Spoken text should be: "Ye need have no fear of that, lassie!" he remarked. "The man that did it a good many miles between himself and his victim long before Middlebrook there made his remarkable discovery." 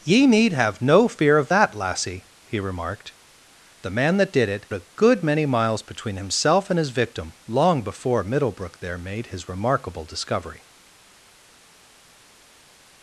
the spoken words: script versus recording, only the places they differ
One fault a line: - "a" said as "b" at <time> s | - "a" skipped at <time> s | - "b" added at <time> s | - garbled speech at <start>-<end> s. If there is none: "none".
none